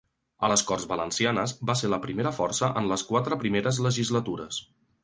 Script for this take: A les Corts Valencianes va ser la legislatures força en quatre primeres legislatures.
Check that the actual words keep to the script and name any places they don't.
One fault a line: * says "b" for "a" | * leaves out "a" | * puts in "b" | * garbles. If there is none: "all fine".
* says "primera" for "legislatures"
* puts in "les"